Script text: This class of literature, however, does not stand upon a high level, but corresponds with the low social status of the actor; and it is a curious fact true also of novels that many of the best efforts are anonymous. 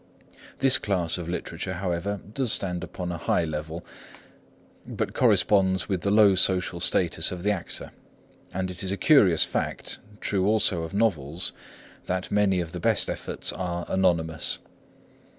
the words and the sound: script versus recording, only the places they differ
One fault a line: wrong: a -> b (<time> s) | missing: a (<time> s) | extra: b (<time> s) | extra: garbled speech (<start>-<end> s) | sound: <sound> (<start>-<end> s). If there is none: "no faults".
missing: not (2.5 s)